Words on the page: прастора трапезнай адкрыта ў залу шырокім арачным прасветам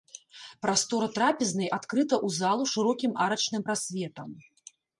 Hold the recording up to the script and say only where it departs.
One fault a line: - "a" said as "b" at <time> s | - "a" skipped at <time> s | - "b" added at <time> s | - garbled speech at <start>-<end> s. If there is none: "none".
none